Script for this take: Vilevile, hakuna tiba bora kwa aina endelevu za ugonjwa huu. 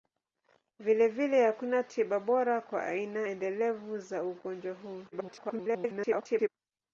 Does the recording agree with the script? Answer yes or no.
no